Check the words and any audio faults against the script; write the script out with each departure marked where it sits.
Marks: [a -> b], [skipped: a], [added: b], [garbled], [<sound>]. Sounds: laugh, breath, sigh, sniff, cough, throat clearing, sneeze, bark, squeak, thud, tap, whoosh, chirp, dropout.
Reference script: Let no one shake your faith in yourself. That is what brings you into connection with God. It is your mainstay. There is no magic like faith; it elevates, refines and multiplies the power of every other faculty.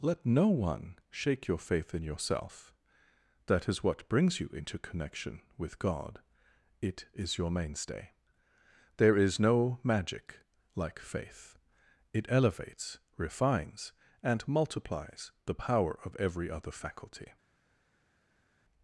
Let no one shake your faith in yourself. That is what brings you into connection with God. It is your mainstay. There is no magic like faith; it elevates, refines and multiplies the power of every other faculty.